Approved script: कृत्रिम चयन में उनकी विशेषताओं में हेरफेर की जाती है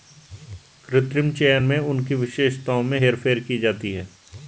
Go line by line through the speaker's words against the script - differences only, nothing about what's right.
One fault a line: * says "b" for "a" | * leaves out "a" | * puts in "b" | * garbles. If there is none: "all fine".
all fine